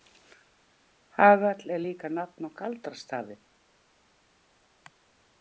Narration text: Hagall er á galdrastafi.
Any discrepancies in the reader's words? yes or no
yes